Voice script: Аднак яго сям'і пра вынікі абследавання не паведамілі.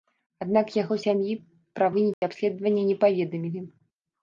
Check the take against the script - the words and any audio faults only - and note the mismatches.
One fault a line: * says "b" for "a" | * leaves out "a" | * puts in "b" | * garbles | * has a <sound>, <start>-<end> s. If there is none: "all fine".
* has a dropout, 2.1-2.2 s